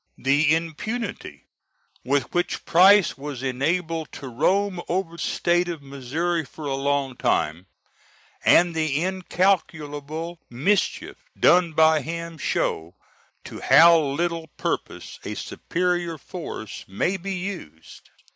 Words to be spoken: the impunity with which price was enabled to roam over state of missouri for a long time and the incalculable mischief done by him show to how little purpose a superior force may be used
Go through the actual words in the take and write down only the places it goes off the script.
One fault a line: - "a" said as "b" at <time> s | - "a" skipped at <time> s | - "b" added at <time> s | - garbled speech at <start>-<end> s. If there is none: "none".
none